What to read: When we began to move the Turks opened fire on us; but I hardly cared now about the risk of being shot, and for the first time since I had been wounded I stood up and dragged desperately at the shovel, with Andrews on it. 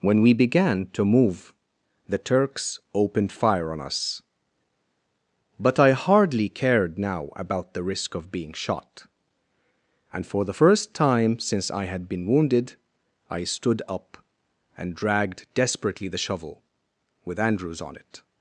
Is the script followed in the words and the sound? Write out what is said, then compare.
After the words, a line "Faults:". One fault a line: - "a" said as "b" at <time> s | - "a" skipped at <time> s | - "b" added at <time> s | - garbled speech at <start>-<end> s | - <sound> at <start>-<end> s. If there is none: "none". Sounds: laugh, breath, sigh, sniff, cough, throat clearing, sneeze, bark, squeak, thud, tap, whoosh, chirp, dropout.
When we began to move the Turks opened fire on us; but I hardly cared now about the risk of being shot, and for the first time since I had been wounded I stood up and dragged desperately the shovel, with Andrews on it.
Faults:
- "at" skipped at 16.1 s